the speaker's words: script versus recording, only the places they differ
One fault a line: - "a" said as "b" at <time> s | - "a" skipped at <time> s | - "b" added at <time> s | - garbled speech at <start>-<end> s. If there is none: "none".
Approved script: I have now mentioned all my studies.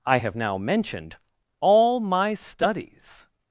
none